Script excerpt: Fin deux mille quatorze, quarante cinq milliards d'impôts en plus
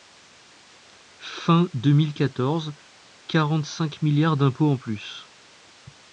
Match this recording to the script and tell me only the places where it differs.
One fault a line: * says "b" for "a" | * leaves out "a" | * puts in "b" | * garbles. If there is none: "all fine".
all fine